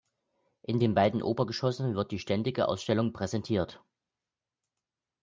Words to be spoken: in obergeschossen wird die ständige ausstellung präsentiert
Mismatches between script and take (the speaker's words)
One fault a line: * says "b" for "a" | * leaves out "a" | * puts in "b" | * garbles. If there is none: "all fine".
* puts in "den beiden"